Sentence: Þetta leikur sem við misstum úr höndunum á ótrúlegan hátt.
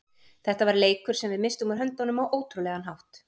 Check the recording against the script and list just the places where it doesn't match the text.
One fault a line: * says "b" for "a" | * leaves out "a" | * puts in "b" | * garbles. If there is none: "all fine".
* puts in "var"